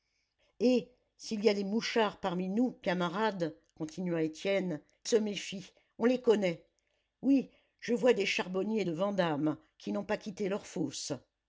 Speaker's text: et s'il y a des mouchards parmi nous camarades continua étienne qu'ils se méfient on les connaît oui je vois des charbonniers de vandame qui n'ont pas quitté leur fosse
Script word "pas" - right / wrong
right